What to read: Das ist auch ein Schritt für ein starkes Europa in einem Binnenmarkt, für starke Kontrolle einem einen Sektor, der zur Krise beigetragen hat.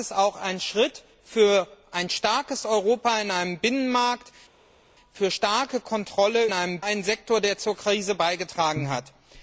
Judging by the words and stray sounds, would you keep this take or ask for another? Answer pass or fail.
pass